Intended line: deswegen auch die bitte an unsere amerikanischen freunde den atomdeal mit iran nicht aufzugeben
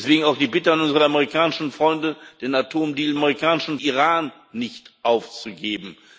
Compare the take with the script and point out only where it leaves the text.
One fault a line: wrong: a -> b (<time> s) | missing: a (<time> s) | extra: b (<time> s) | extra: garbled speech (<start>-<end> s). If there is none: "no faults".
wrong: mit -> amerikanischen (3.1 s)